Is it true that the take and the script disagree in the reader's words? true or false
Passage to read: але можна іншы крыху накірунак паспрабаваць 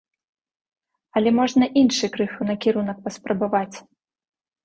false